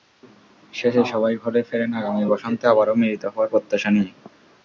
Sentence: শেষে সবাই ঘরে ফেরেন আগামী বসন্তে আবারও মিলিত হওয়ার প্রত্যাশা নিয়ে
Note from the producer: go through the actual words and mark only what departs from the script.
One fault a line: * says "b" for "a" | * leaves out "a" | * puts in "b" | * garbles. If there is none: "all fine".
all fine